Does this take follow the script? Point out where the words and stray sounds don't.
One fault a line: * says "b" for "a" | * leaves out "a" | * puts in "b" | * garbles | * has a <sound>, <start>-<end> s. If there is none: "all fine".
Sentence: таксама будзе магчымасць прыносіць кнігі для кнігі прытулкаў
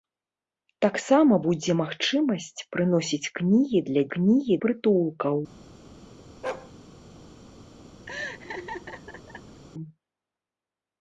* has a bark, 6.4-6.7 s
* has a laugh, 8.1-9.6 s